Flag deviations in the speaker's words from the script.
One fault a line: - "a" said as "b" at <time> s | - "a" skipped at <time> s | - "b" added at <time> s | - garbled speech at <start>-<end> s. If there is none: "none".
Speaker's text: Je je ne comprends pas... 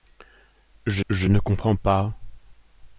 none